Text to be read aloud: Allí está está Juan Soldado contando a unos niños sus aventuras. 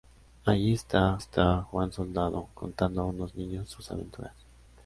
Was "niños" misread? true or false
false